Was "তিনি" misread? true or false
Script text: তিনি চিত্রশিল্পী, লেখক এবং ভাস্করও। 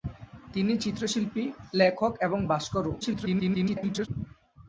false